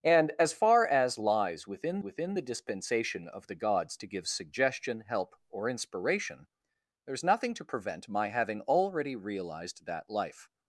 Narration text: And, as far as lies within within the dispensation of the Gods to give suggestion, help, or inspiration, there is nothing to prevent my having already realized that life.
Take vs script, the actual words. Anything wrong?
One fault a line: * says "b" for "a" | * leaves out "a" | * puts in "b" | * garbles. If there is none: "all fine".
all fine